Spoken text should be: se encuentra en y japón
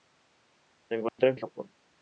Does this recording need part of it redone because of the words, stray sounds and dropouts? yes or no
yes